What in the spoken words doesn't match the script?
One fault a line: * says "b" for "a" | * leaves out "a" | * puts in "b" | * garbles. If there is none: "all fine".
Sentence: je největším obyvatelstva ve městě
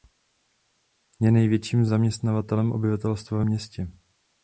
* puts in "zaměstnavatelem"